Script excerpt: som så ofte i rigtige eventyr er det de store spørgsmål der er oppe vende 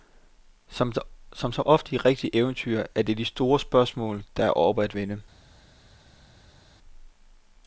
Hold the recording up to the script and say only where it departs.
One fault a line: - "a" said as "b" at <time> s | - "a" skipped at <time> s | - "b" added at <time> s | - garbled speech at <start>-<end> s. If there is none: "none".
- "at" added at 4.8 s